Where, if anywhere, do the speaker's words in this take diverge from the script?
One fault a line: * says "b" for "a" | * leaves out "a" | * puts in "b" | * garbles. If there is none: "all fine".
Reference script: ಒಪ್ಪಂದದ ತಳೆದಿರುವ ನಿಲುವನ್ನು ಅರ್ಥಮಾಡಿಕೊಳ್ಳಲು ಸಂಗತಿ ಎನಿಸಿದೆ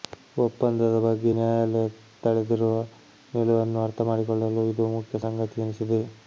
* puts in "ಬಗ್ಗೆ ನ್ಯಾಯಾಲಯ"
* puts in "ಇದು ಮುಖ್ಯ"